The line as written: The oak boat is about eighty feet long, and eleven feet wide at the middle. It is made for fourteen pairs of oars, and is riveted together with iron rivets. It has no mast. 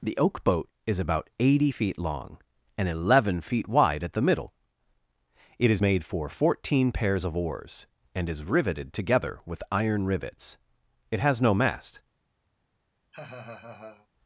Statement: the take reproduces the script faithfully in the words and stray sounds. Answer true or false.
false